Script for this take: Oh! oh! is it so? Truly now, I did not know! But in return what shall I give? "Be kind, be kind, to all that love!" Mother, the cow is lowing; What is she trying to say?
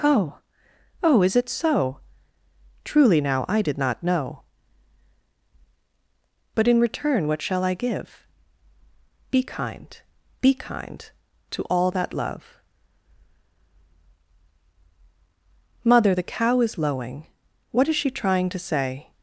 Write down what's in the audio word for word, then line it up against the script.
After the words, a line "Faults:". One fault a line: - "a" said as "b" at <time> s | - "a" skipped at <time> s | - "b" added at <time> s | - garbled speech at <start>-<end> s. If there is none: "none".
Oh! oh! is it so? Truly now, I did not know! But in return what shall I give? "Be kind, be kind, to all that love!" Mother, the cow is lowing; What is she trying to say?
Faults:
none